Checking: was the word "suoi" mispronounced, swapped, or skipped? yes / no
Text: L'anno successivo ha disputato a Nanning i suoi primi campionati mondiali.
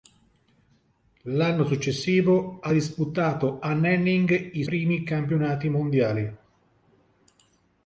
yes